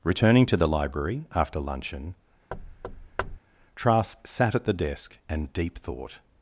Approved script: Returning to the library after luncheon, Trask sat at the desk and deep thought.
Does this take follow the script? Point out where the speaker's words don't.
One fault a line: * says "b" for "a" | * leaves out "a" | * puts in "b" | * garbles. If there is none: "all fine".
all fine